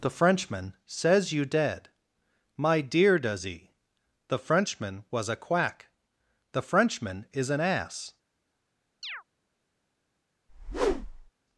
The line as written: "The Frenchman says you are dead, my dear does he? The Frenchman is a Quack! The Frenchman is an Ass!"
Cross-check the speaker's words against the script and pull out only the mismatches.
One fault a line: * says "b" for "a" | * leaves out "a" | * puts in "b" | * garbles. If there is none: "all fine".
* leaves out "are"
* says "was" for "is"